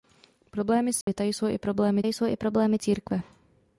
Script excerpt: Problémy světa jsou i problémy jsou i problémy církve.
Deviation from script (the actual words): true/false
false